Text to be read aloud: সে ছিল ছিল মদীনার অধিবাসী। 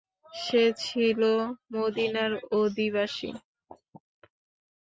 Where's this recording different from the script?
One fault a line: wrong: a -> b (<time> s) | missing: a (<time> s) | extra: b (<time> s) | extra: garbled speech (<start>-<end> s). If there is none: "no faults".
missing: ছিল (1.2 s)